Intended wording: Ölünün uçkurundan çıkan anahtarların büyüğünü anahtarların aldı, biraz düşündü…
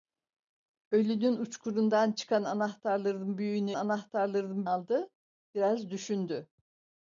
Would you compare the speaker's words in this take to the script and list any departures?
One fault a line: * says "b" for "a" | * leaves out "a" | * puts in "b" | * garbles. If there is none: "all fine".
all fine